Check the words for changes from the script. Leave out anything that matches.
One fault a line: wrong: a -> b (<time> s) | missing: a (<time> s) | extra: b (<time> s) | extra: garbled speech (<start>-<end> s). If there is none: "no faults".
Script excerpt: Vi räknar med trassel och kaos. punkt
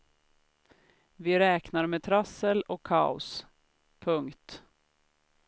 no faults